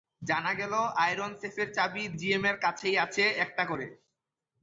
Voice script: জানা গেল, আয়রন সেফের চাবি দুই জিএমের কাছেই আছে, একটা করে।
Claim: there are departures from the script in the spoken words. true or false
true